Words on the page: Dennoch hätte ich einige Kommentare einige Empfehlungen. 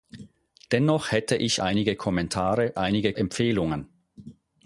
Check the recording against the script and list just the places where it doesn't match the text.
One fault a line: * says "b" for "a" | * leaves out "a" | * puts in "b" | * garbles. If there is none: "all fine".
all fine